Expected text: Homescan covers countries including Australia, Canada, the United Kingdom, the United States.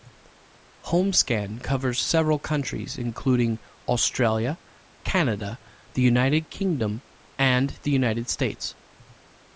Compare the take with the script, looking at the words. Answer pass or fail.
fail